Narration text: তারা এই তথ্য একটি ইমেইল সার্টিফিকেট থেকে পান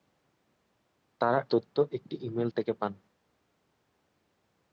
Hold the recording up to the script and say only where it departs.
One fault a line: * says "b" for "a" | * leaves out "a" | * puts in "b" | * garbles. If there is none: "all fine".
* leaves out "এই"
* leaves out "সার্টিফিকেট"